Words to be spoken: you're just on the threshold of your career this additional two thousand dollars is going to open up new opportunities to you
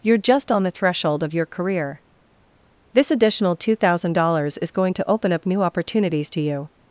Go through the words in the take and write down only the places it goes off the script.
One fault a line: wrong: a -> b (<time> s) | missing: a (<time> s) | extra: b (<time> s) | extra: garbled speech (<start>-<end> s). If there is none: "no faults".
no faults